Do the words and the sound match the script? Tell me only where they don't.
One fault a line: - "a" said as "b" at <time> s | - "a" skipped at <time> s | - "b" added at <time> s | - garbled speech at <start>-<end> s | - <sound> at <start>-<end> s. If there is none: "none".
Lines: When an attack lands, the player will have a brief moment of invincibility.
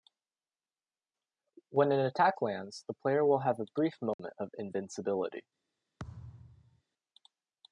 - dropout at 4.1-4.2 s
- thud at 6.0-6.8 s